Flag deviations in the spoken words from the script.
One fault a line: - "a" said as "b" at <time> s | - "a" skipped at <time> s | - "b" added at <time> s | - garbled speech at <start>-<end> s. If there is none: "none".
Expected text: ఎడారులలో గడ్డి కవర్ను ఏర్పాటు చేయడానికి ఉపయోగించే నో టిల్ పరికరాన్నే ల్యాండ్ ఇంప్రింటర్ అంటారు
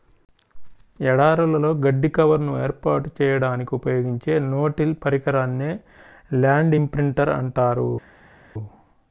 none